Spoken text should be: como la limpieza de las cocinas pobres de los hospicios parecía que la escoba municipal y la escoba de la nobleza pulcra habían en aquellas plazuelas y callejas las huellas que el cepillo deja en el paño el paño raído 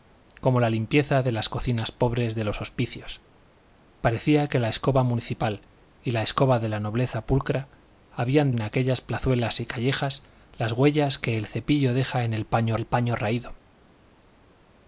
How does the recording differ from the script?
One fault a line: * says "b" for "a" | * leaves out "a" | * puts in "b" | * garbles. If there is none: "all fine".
all fine